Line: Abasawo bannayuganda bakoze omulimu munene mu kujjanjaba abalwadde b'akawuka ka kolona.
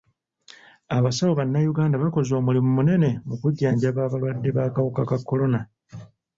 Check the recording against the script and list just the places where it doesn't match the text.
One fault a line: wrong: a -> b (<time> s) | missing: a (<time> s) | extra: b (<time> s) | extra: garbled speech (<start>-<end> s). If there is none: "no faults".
no faults